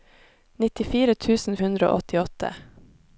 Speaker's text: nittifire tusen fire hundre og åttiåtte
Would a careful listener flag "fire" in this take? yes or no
yes